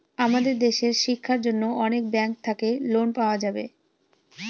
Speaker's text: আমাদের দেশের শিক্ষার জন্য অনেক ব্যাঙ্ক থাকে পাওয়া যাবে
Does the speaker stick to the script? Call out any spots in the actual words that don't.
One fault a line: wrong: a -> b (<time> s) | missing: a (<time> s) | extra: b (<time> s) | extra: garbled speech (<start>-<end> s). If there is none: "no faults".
extra: লোন (2.9 s)